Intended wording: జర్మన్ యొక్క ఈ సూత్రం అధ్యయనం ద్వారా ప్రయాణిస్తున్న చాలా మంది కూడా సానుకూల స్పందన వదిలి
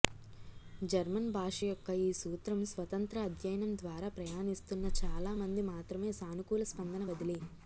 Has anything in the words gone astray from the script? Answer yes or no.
yes